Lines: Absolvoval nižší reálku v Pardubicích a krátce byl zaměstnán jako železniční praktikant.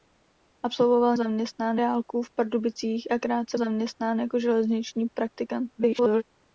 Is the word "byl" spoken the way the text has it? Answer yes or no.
no